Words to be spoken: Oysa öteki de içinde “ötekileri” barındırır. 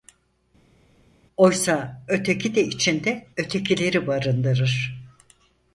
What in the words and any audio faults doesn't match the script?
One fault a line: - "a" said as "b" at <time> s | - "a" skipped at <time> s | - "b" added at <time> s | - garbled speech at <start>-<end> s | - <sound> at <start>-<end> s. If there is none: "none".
none